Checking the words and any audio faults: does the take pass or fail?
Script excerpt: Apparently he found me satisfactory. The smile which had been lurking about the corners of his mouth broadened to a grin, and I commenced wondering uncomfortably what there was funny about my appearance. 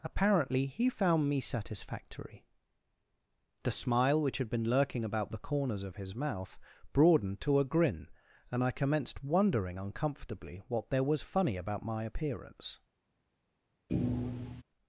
fail